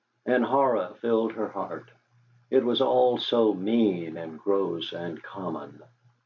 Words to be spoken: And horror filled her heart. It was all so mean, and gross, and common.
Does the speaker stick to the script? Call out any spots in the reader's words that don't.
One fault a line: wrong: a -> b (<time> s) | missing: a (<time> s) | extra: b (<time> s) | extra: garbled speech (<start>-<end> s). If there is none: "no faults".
no faults